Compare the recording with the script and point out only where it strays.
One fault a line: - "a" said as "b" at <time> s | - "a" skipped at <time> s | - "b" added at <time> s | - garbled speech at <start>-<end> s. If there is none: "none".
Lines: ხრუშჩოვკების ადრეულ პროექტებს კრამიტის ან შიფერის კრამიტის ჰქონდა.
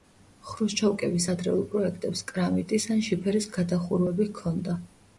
- "კრამიტის" said as "გადახურვები" at 3.6 s